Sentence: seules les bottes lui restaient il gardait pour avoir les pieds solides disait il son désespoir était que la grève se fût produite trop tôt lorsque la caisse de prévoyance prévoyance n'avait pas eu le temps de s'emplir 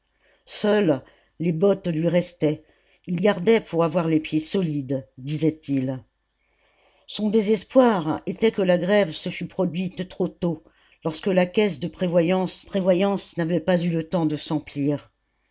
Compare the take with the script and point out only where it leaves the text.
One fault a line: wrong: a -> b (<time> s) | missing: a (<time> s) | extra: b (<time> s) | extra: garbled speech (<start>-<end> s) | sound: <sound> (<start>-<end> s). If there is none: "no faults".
no faults